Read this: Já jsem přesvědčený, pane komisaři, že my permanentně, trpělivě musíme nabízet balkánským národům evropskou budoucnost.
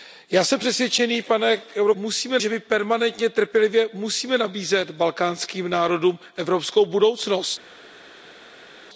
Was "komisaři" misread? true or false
true